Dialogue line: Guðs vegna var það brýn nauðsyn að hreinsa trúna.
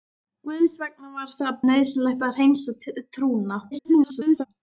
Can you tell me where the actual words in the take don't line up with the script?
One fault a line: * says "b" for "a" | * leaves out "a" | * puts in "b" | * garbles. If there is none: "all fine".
* leaves out "brýn"
* garbles